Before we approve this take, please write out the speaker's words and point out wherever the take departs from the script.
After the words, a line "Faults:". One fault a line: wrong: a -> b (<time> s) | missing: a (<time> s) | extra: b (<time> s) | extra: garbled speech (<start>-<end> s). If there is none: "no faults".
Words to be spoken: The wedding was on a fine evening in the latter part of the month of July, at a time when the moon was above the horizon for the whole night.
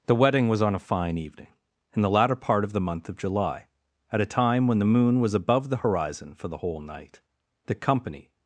The wedding was on a fine evening in the latter part of the month of July, at a time when the moon was above the horizon for the whole night. The company
Faults:
extra: The company (7.7 s)